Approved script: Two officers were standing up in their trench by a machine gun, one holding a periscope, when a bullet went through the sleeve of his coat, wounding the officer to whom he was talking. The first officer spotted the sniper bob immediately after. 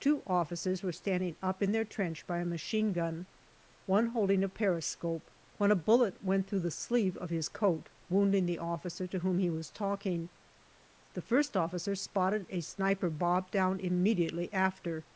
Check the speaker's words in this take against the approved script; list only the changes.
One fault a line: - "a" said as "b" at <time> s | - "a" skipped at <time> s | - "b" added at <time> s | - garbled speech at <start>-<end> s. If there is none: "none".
- "the" said as "a" at 12.5 s
- "down" added at 13.5 s